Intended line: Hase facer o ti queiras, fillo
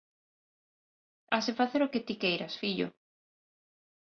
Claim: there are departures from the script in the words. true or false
true